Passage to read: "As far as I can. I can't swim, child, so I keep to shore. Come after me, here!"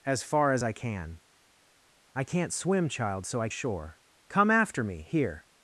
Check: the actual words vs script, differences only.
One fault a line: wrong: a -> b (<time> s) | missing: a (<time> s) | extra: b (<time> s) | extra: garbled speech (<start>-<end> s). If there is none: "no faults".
missing: keep to (3.5 s)